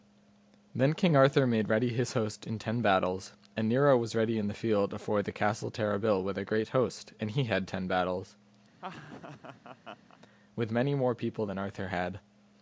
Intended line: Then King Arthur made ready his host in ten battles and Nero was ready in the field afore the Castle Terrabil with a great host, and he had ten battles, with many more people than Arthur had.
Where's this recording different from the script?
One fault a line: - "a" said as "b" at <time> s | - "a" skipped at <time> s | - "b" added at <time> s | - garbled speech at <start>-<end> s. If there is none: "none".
none